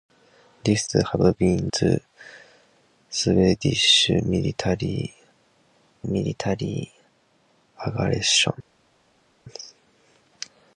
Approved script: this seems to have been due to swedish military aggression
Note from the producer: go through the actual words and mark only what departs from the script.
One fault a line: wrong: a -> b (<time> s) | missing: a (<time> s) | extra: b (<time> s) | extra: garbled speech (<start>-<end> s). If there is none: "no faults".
missing: seems (0.8 s)
missing: due (1.7 s)
extra: military (6.1 s)